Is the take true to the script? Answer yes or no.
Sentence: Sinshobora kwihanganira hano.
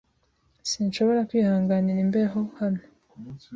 no